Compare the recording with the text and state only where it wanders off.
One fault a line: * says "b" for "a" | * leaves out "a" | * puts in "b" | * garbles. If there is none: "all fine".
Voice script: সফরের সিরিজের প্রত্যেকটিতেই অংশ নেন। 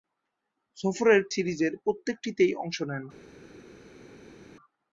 all fine